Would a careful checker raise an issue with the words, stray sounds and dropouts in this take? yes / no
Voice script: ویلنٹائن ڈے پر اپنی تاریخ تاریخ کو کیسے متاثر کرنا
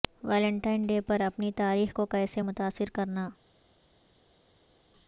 yes